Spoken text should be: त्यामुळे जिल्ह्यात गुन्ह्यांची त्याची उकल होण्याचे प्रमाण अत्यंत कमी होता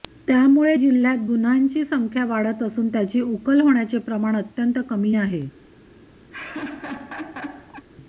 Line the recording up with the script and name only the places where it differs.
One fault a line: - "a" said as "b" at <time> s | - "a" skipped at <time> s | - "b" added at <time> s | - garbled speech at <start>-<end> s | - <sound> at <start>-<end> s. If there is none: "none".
- "संख्या वाढत असून" added at 1.8 s
- "होता" said as "आहे" at 5.1 s
- laugh at 6.3-7.9 s